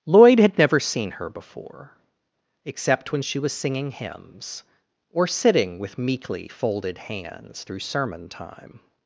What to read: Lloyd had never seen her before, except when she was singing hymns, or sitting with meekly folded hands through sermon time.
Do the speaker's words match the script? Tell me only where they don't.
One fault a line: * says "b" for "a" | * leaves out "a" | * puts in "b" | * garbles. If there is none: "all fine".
all fine